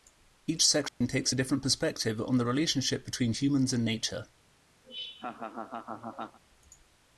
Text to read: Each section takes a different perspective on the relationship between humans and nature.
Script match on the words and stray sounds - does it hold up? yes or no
no